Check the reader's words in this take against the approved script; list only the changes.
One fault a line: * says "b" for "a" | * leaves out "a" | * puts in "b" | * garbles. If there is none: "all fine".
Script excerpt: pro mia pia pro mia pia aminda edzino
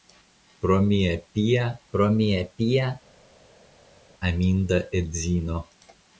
all fine